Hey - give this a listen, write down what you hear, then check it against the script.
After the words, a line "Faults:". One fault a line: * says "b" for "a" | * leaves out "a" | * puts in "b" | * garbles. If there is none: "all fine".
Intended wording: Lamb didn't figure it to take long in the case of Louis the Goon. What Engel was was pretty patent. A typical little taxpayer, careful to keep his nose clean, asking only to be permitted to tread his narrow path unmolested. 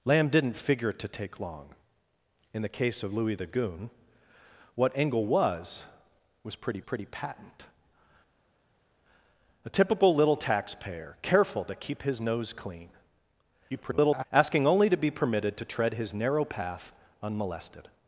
Lamb didn't figure it to take long in the case of Louis the Goon. What Engel was was pretty pretty patent. A typical little taxpayer, careful to keep his nose clean, [garbled] asking only to be permitted to tread his narrow path unmolested.
Faults:
* puts in "pretty"
* garbles